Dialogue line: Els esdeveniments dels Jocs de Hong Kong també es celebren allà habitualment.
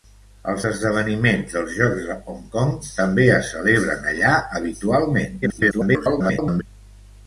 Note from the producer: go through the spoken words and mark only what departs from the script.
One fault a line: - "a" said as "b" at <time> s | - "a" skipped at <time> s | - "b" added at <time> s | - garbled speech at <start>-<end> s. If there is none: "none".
- garbled speech at 5.4-6.6 s